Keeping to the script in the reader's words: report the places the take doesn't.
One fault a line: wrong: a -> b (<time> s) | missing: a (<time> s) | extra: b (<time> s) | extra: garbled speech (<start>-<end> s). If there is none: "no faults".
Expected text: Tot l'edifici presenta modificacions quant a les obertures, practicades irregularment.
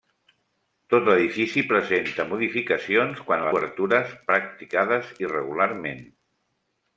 missing: les (3.5 s)